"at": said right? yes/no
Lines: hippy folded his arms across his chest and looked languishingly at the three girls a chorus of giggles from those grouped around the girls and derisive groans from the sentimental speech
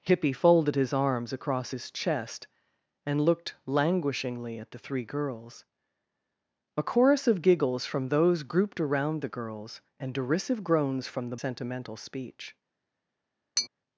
yes